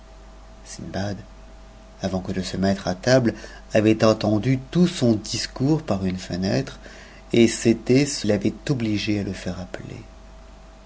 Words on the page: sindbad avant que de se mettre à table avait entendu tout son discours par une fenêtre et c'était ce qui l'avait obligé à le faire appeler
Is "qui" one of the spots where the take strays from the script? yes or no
yes